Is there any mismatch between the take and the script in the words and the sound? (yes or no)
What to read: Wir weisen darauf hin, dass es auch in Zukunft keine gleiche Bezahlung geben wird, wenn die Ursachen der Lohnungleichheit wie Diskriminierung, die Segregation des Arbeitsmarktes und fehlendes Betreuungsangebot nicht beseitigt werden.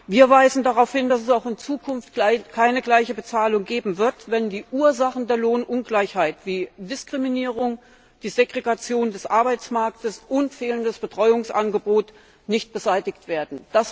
no